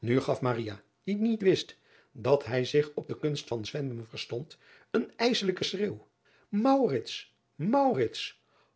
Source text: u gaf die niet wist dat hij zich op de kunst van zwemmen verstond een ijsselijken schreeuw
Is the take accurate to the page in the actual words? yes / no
yes